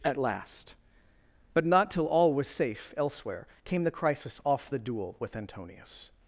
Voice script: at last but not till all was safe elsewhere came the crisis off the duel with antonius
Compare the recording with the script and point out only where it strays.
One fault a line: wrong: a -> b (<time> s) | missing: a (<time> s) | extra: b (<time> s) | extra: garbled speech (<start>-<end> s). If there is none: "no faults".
no faults